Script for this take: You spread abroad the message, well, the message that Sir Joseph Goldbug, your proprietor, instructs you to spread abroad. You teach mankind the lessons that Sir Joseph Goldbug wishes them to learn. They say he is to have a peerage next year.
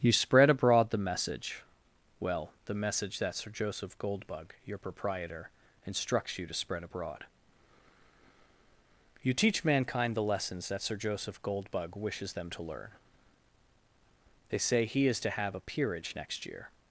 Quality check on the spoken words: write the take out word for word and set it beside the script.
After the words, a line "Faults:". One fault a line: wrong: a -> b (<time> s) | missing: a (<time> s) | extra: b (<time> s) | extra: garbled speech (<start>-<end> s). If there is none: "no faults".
You spread abroad the message, well, the message that Sir Joseph Goldbug, your proprietor, instructs you to spread abroad. You teach mankind the lessons that Sir Joseph Goldbug wishes them to learn. They say he is to have a peerage next year.
Faults:
no faults